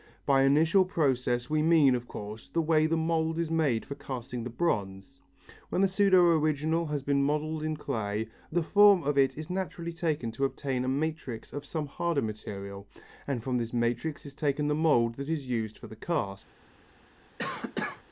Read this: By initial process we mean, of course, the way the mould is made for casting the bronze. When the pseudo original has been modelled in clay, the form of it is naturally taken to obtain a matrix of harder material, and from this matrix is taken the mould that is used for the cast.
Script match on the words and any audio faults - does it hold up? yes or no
no